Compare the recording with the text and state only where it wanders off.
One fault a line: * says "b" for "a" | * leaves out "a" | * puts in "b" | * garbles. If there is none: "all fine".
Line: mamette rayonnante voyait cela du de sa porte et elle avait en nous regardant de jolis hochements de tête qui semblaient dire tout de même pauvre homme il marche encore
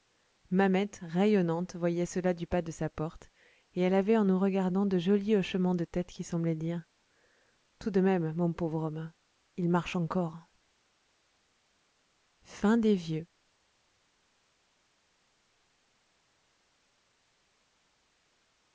* puts in "pas"
* puts in "mon"